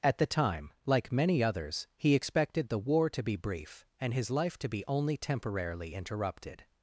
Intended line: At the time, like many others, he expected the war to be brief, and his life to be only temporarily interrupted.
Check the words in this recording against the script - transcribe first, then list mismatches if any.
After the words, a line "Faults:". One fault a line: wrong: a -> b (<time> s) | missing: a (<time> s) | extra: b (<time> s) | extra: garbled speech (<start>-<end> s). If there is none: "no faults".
At the time, like many others, he expected the war to be brief, and his life to be only temporarily interrupted.
Faults:
no faults